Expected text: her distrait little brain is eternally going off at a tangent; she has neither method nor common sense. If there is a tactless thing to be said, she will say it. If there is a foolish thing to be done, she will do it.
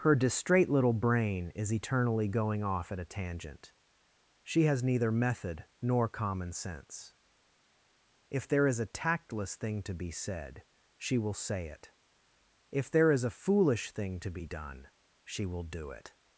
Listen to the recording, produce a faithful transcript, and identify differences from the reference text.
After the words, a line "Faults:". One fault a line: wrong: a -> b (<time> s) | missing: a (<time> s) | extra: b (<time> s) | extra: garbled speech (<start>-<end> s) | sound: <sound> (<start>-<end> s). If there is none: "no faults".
her distrait little brain is eternally going off at a tangent; she has neither method nor common sense. If there is a tactless thing to be said, she will say it. If there is a foolish thing to be done, she will do it.
Faults:
no faults